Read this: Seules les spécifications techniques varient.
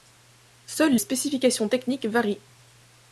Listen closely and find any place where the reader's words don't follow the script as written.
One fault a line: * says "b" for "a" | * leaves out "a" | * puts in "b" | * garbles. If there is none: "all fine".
* leaves out "les"